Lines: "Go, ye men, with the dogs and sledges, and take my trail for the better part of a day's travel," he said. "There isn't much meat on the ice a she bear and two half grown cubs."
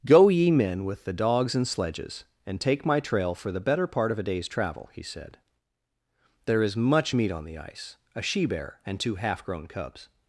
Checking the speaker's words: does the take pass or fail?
fail